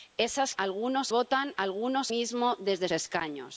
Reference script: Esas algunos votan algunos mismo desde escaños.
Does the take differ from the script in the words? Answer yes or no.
no